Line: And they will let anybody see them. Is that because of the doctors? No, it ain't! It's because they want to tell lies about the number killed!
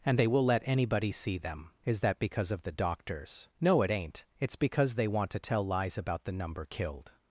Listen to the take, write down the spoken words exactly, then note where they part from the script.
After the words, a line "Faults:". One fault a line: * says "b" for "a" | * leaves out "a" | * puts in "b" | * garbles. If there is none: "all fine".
And they will let anybody see them. Is that because of the doctors? No, it ain't! It's because they want to tell lies about the number killed!
Faults:
all fine